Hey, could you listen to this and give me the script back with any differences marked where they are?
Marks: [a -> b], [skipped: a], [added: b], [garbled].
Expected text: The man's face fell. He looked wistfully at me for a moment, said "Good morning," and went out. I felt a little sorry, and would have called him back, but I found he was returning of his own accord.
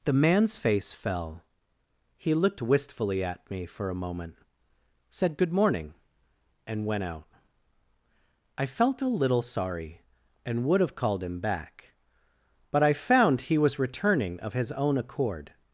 The man's face fell. He looked wistfully at me for a moment, said "Good morning," and went out. I felt a little sorry, and would have called him back, but I found he was returning of his own accord.